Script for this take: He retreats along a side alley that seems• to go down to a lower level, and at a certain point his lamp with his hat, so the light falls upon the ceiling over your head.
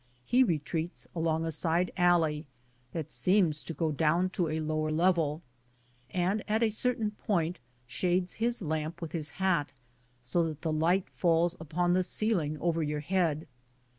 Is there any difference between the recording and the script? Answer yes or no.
yes